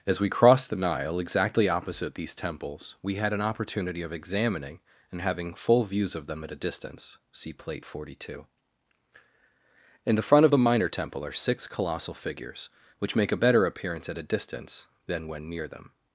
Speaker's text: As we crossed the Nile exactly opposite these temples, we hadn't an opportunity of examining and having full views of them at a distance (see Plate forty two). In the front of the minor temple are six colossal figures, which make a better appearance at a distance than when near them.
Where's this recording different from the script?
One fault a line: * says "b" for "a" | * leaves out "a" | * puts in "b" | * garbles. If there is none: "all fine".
* says "had" for "hadn't"